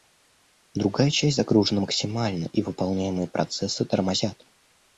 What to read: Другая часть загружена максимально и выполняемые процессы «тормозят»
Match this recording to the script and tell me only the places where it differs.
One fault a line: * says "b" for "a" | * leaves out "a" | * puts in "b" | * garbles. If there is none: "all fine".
all fine